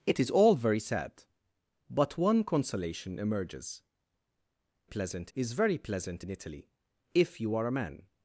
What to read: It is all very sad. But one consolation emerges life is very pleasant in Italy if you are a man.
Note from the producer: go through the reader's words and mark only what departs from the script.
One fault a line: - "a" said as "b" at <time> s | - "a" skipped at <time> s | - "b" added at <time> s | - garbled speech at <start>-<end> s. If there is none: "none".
- "life" said as "pleasant" at 4.8 s